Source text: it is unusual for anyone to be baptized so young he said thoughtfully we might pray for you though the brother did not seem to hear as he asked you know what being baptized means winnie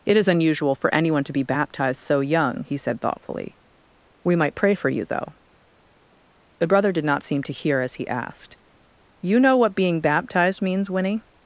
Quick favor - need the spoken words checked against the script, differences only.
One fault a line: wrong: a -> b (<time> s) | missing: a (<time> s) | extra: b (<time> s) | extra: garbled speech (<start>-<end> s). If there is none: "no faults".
no faults